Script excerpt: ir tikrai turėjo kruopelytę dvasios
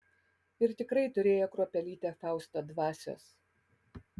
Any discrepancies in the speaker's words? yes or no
yes